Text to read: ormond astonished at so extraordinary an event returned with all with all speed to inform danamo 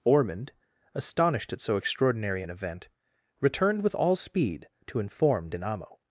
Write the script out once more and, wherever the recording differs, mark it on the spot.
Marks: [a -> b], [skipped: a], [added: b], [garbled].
ormond astonished at so extraordinary an event returned with all [skipped: with all] speed to inform danamo